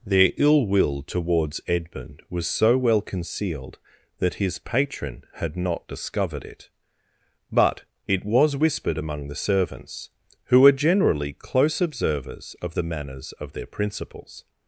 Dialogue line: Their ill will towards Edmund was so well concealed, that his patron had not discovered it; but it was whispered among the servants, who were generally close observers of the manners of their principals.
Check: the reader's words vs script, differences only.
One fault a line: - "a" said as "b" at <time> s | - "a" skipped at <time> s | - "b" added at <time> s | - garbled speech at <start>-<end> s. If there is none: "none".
none